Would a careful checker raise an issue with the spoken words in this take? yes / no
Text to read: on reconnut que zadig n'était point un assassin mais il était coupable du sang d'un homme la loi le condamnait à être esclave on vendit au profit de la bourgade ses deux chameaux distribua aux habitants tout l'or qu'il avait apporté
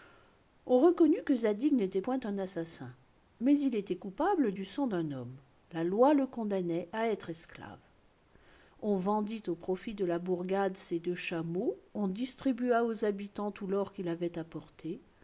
yes